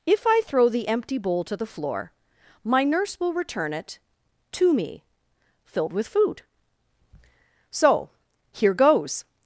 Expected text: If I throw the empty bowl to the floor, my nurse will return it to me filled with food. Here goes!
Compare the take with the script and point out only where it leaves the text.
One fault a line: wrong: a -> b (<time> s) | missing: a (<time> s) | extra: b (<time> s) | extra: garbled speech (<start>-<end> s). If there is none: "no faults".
extra: So (7.7 s)